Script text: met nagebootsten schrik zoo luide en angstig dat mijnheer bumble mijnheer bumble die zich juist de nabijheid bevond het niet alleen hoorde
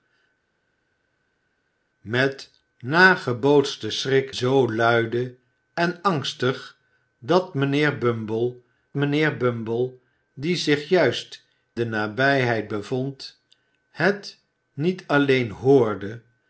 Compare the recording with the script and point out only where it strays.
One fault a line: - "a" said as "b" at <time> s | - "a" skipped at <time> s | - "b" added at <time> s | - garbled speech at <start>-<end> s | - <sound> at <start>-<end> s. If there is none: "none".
none